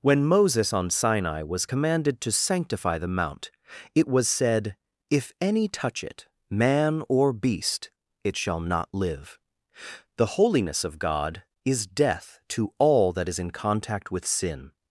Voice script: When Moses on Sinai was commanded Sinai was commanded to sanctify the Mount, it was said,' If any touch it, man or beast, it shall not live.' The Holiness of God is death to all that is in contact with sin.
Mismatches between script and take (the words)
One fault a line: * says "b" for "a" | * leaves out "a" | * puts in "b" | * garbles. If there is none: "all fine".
* leaves out "Sinai was commanded"